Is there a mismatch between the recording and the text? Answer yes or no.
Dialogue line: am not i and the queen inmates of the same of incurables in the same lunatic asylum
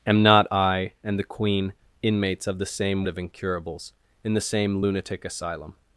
no